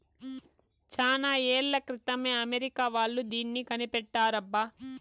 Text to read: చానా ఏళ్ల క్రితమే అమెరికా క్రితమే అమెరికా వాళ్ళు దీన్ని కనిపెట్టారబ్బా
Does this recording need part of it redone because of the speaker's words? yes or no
yes